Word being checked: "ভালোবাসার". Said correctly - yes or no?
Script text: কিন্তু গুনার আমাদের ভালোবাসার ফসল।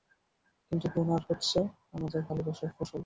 yes